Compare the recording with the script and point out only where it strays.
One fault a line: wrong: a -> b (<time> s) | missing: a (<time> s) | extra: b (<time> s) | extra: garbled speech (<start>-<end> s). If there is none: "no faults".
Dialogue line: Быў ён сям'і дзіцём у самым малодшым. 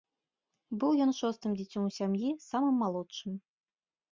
wrong: сям'і -> шостым (1.2 s)
extra: сям'і (2.0 s)